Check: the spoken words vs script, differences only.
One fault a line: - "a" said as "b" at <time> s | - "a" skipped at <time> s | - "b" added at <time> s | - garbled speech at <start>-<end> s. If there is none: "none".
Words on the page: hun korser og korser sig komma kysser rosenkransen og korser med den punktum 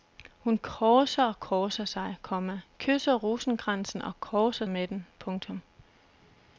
none